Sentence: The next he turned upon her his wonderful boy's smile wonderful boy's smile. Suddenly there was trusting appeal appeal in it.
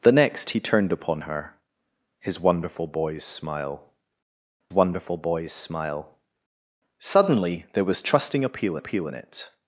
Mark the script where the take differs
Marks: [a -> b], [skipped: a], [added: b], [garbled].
The next he turned upon her his wonderful boy's smile wonderful boy's smile. Suddenly there was trusting appeal appeal in it.